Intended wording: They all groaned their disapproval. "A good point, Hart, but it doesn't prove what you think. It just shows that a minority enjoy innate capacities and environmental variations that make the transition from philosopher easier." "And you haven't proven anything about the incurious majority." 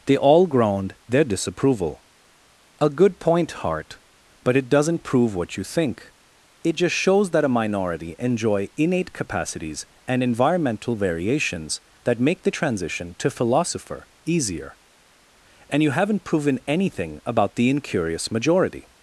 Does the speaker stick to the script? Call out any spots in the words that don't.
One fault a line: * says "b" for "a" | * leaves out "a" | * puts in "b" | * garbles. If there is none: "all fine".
* says "to" for "from"